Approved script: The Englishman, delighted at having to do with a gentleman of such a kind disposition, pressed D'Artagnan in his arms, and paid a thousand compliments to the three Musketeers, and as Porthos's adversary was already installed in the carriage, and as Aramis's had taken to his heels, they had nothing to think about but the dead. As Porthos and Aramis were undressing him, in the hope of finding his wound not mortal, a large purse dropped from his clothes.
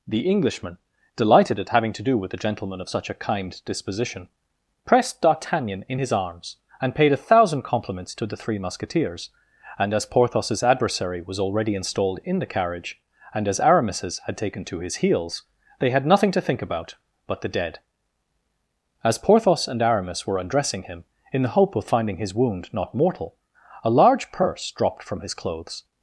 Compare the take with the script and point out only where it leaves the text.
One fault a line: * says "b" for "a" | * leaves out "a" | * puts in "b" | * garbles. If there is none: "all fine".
all fine